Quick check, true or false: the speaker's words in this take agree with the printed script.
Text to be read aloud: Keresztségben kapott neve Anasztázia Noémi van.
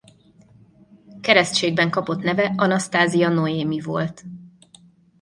false